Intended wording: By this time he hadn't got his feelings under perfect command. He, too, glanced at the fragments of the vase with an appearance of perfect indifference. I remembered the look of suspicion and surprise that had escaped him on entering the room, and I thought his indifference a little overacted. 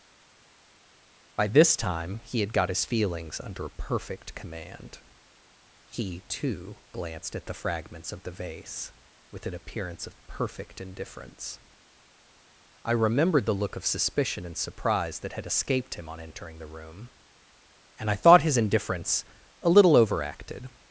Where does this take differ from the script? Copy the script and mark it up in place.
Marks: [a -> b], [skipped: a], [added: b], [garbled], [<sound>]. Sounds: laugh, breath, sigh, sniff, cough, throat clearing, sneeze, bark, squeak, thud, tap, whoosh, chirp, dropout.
By this time he [hadn't -> had] got his feelings under perfect command. He, too, glanced at the fragments of the vase with an appearance of perfect indifference. I remembered the look of suspicion and surprise that had escaped him on entering the room, and I thought his indifference a little overacted.